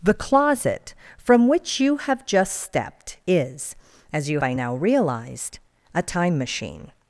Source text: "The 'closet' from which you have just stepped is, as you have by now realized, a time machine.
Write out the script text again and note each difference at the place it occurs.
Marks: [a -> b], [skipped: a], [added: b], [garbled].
"The 'closet' from which you have just stepped is, as you [skipped: have] by now realized, a time machine.